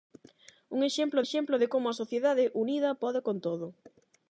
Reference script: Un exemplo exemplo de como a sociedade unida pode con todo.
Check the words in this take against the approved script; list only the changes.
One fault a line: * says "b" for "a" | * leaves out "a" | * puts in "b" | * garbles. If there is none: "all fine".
all fine